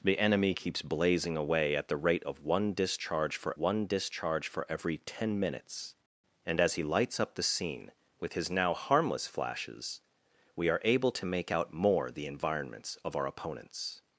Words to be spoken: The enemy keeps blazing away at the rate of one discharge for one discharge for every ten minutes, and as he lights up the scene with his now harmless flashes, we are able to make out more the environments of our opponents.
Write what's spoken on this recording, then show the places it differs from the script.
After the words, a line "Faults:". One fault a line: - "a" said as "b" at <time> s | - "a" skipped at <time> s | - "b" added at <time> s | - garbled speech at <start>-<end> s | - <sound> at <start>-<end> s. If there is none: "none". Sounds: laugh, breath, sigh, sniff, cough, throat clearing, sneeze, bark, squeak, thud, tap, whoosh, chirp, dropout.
The enemy keeps blazing away at the rate of one discharge for one discharge for every ten minutes, and as he lights up the scene with his now harmless flashes, we are able to make out more the environments of our opponents.
Faults:
none